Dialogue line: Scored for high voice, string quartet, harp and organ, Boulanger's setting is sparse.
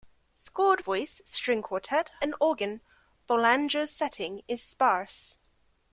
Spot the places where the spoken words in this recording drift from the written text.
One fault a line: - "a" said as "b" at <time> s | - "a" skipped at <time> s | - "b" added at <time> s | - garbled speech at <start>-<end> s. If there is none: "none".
- "for high" skipped at 0.8 s
- "harp" skipped at 2.1 s